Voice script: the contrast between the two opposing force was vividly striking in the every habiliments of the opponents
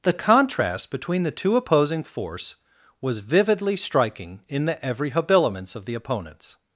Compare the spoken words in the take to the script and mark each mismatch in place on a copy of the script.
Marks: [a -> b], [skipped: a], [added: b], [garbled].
the contrast between the two opposing force was vividly striking in the every habiliments of the opponents